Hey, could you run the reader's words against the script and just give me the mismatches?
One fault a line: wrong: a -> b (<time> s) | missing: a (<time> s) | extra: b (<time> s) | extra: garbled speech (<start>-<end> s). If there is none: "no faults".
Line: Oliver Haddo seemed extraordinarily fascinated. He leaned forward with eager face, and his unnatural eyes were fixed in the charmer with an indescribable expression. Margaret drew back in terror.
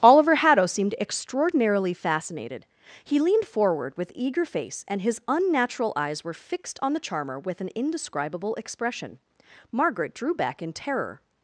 wrong: in -> on (6.8 s)